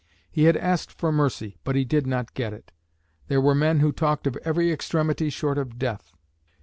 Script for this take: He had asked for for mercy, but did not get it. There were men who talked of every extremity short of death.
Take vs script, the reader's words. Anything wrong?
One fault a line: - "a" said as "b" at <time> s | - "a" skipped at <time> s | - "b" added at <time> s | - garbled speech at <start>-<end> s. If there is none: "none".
- "for" skipped at 1.1 s
- "he" added at 1.8 s